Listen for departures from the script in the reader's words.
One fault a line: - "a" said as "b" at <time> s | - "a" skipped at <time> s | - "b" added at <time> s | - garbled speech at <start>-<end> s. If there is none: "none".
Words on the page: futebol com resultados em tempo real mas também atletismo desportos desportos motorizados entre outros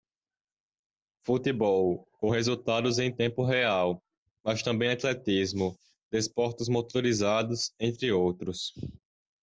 - "desportos" skipped at 6.7 s